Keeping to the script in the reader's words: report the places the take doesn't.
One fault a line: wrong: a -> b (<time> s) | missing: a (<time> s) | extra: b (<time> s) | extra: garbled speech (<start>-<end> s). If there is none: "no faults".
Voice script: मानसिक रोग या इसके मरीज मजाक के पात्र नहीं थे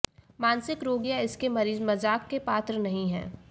wrong: थे -> हैं (3.1 s)